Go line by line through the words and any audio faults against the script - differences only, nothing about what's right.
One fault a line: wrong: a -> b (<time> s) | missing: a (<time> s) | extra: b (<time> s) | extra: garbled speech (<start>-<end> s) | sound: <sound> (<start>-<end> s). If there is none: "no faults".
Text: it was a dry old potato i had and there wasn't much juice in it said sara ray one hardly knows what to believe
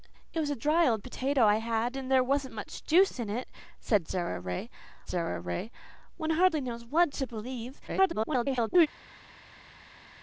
extra: sara ray (5.1 s)
extra: garbled speech (7.9-8.9 s)